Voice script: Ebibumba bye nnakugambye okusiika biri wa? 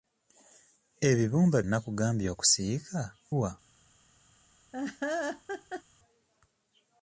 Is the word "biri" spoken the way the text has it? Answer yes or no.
no